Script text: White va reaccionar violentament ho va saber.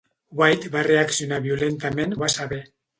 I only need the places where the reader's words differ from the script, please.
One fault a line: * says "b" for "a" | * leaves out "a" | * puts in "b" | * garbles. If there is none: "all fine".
all fine